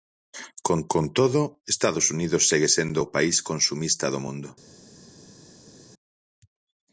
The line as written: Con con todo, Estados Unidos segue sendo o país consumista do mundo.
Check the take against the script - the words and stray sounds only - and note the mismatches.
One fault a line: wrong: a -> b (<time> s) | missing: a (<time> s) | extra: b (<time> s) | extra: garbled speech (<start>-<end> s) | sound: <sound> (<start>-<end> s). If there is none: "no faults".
no faults